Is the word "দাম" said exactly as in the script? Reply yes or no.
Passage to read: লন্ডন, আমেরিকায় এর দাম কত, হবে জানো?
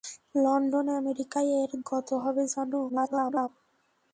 no